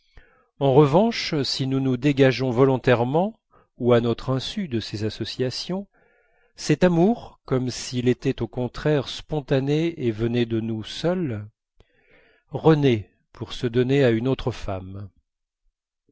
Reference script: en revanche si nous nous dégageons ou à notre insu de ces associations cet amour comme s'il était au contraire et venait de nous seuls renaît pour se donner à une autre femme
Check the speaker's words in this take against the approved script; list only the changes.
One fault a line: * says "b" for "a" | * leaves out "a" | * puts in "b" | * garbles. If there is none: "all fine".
* puts in "volontairement"
* puts in "spontané"